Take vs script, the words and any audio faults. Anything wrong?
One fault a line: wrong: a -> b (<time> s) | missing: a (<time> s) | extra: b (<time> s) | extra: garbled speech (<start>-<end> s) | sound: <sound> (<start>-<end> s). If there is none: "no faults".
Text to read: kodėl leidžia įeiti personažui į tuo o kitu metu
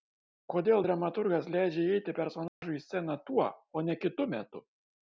extra: dramaturgas (0.8 s)
sound: dropout (2.5-2.6 s)
extra: sceną (2.9 s)
extra: ne (3.9 s)